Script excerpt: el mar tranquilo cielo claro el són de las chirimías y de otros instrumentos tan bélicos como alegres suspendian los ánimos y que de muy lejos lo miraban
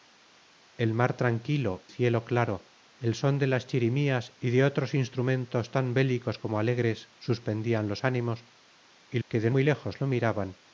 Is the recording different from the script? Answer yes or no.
no